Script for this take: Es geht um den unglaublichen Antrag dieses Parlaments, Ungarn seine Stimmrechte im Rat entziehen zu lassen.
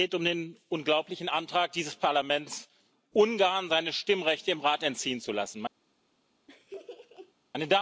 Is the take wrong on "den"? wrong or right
right